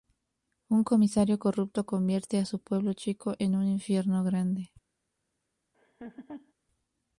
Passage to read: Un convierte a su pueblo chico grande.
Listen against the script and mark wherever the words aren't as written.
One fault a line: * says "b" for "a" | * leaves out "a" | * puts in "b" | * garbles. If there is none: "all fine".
* puts in "comisario corrupto"
* puts in "en un infierno"